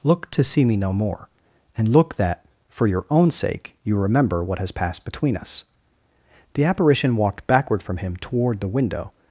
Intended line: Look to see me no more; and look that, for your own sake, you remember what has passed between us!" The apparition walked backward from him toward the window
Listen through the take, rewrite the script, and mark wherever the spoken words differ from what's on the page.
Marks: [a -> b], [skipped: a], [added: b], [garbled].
Look to see me no more; and look that, for your own sake, you remember what has passed between us!" The apparition walked backward from him toward the window